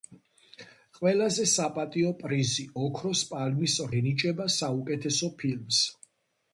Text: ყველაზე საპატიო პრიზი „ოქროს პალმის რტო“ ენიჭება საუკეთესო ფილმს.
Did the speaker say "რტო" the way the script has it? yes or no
no